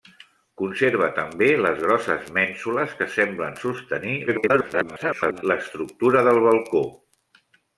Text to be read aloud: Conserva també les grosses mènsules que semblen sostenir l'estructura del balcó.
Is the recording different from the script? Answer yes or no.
yes